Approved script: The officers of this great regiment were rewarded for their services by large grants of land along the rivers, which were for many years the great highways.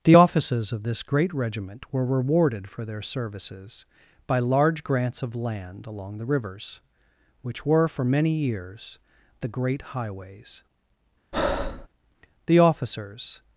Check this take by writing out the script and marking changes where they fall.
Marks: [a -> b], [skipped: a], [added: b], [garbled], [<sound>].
The officers of this great regiment were rewarded for their services by large grants of land along the rivers, which were for many years the great highways. [breath] [added: The officers]